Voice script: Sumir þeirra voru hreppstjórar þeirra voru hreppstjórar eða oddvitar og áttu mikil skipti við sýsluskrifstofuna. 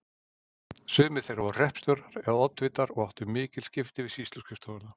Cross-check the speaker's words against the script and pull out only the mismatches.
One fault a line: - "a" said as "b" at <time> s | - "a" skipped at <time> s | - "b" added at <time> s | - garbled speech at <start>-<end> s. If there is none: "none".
- "þeirra voru hreppstjórar" skipped at 2.2 s